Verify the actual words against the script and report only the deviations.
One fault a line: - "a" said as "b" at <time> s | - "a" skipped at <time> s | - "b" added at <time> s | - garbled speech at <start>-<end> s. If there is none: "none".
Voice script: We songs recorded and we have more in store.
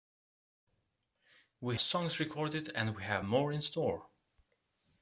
none